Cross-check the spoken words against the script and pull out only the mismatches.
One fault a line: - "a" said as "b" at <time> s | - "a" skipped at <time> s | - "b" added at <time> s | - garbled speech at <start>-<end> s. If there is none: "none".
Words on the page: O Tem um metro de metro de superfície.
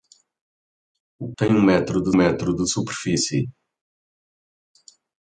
none